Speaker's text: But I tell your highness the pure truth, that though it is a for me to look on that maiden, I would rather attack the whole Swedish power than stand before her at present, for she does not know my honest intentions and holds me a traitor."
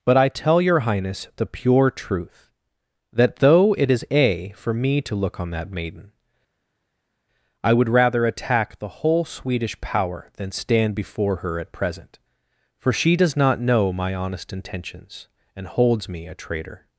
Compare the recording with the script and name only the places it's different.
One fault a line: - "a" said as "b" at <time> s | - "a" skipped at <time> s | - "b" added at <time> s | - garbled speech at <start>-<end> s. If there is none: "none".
none